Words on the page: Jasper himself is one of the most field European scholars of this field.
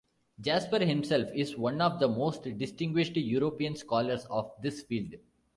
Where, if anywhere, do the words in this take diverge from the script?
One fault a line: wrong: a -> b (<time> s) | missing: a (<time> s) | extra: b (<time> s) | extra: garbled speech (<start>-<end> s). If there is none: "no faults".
wrong: field -> distinguished (2.6 s)